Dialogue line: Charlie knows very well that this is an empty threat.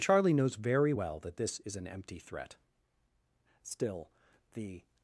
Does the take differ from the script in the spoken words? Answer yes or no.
yes